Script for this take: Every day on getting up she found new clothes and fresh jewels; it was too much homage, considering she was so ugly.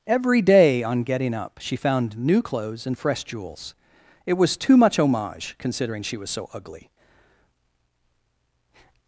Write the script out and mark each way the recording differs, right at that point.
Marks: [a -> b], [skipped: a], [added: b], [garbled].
Every day on getting up she found new clothes and fresh jewels; it was too much homage, considering she was so ugly.